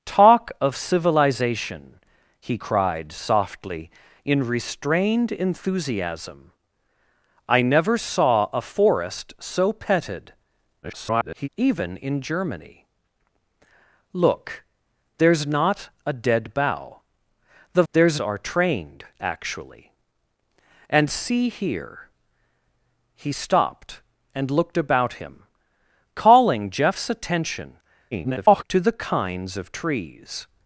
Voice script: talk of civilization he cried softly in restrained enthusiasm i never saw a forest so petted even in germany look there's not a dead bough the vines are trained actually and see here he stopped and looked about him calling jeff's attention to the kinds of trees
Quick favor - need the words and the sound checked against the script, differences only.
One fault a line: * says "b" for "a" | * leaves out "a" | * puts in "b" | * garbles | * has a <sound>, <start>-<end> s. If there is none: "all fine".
* garbles
* says "there's" for "vines"
* garbles